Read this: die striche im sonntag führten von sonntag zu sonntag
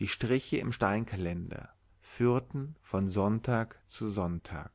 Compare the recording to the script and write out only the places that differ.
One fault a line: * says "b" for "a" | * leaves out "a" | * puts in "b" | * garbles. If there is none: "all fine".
* says "steinkalender" for "sonntag"